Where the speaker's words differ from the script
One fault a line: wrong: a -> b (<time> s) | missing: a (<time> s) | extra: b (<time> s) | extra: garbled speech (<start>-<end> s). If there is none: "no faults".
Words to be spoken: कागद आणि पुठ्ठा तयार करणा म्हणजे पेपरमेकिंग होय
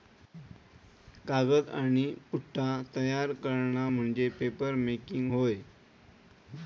no faults